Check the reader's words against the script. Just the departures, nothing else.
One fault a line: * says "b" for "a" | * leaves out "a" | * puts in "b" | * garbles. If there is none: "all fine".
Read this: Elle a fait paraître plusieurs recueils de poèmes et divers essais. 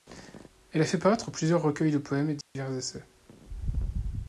all fine